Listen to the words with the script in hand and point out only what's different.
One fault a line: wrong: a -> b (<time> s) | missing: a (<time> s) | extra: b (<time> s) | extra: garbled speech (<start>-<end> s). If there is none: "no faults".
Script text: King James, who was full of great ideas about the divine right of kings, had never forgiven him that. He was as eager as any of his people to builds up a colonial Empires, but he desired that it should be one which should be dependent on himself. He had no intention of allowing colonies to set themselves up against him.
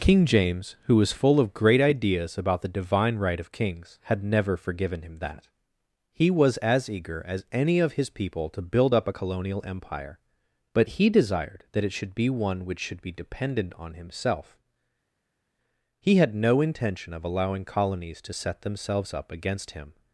wrong: builds -> build (8.6 s)
wrong: Empires -> Empire (9.6 s)